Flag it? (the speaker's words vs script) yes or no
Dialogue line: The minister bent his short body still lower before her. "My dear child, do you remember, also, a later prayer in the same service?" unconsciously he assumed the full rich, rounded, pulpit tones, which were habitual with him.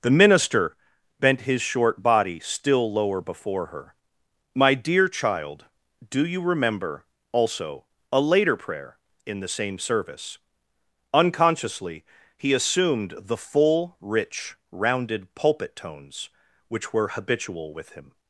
no